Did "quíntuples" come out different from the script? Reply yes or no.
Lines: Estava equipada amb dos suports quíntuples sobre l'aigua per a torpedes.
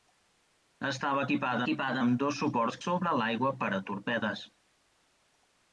yes